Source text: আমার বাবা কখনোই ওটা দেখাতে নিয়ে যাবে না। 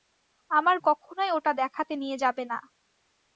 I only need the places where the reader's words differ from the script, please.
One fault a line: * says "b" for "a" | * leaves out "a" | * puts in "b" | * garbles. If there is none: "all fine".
* leaves out "বাবা"